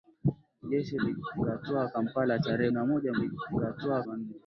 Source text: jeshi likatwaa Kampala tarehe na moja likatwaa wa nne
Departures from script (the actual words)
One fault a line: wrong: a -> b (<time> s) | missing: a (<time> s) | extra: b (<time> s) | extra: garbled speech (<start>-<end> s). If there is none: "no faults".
no faults